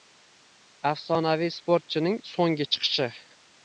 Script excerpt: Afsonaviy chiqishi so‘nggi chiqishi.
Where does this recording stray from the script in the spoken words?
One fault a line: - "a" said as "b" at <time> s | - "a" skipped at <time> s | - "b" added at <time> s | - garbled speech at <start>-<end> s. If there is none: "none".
- "chiqishi" said as "sportchining" at 1.6 s